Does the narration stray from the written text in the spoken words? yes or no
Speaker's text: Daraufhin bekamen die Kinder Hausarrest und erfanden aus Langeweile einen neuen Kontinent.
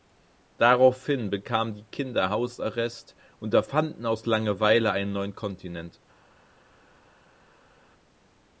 no